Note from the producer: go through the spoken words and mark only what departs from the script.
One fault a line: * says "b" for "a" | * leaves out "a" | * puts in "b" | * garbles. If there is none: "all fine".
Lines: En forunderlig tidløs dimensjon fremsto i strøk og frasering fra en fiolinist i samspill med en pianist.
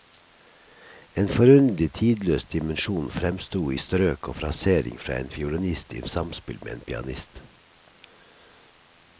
all fine